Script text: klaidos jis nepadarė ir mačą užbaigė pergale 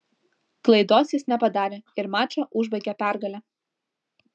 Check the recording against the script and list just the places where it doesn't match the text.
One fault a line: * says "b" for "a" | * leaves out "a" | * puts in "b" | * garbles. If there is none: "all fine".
all fine